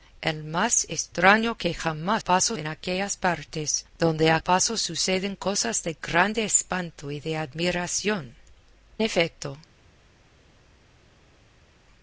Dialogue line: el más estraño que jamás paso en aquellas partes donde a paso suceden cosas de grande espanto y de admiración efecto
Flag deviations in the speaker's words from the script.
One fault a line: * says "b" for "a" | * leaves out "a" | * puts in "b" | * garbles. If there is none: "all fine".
all fine